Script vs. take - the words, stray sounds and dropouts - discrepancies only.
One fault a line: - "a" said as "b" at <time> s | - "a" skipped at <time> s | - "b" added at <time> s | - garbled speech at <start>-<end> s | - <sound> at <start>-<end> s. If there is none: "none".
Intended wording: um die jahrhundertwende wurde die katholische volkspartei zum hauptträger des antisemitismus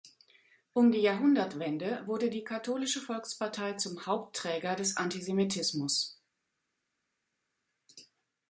none